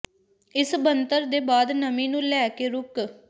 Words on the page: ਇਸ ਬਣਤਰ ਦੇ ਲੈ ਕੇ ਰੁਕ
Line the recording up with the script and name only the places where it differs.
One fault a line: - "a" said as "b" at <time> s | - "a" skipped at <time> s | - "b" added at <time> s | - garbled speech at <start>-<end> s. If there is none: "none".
- "ਬਾਅਦ ਨਮੀ ਨੂੰ" added at 1.4 s